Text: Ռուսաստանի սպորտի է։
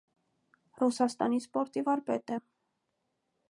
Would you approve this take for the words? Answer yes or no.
no